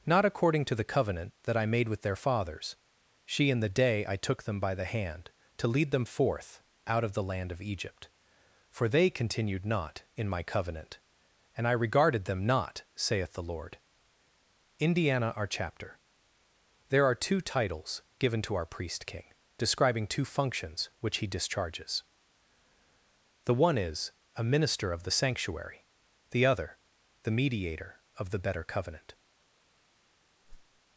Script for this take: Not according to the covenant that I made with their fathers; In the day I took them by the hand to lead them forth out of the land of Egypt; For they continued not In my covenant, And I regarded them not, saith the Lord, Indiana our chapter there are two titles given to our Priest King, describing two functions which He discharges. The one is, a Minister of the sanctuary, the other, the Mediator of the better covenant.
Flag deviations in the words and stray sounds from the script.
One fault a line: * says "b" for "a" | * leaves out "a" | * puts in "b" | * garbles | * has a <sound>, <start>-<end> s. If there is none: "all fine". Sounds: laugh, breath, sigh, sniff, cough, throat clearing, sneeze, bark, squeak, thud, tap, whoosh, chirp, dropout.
* puts in "she"
* has a whoosh, 30.4-30.8 s